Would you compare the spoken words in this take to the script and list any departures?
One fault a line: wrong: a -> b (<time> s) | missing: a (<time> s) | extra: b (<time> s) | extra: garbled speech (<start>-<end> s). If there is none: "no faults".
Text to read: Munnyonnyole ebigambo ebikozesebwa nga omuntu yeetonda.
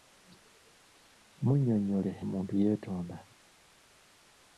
missing: ebigambo ebikozesebwa nga (2.1 s)